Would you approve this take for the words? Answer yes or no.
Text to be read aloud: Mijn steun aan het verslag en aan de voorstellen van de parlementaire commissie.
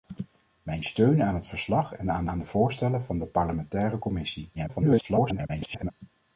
no